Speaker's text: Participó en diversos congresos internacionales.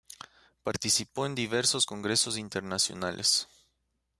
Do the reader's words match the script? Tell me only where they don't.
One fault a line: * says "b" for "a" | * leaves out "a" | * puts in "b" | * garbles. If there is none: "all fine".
all fine